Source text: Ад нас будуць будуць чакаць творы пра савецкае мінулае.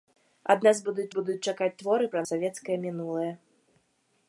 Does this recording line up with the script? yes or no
yes